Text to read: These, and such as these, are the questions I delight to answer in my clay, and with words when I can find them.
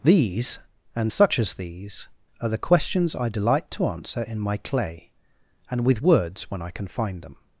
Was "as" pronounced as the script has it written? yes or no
yes